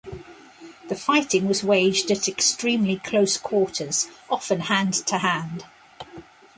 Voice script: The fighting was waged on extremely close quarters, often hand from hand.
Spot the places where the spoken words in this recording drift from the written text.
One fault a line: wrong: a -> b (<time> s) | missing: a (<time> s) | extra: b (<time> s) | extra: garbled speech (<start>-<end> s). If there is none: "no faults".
wrong: on -> at (2.1 s)
wrong: from -> to (5.0 s)